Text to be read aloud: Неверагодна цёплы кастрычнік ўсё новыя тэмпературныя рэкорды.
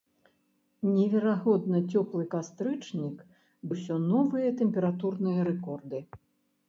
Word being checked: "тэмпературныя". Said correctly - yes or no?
yes